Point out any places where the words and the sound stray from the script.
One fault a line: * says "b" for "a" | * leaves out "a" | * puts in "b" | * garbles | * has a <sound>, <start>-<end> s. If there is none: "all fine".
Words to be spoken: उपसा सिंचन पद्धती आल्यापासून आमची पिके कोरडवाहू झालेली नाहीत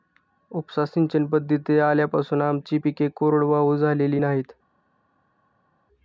all fine